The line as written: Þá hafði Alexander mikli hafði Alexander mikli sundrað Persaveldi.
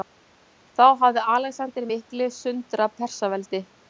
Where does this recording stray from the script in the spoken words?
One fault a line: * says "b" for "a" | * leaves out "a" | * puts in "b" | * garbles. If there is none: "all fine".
* leaves out "hafði Alexander mikli"